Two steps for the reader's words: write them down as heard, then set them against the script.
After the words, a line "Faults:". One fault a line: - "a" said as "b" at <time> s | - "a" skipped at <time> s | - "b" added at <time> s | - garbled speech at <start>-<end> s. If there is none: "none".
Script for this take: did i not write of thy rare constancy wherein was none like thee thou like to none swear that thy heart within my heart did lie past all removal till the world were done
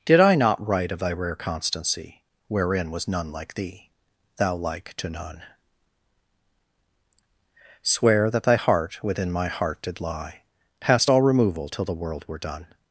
did i not write of thy rare constancy wherein was none like thee thou like to none swear that thy heart within my heart did lie past all removal till the world were done
Faults:
none